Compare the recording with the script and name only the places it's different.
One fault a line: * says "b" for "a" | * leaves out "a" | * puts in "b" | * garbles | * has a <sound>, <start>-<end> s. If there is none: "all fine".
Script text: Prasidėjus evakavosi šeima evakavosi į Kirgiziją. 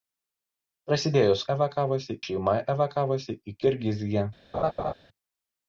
* has a laugh, 4.5-4.9 s